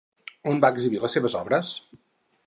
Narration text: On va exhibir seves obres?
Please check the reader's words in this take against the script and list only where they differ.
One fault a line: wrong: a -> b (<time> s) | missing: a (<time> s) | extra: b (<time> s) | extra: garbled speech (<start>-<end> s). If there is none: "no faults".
extra: les (1.0 s)